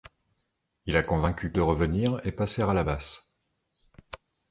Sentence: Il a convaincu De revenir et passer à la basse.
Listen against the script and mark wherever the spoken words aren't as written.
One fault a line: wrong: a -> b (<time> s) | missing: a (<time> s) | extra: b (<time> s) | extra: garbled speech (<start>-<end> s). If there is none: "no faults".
no faults